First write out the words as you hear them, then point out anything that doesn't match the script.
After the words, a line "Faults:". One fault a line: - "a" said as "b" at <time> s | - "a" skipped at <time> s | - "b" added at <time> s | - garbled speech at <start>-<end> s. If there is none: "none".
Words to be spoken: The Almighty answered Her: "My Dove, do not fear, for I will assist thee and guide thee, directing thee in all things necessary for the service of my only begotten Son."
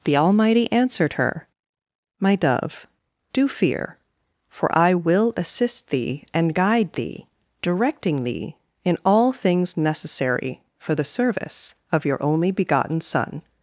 The Almighty answered Her: "My Dove, do fear, for I will assist thee and guide thee, directing thee in all things necessary for the service of your only begotten Son."
Faults:
- "not" skipped at 3.5 s
- "my" said as "your" at 12.0 s